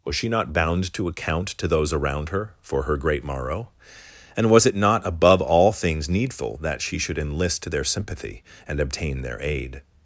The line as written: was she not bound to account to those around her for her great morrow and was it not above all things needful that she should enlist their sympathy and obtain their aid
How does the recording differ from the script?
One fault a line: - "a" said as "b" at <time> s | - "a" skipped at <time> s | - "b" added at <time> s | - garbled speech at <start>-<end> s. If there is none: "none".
none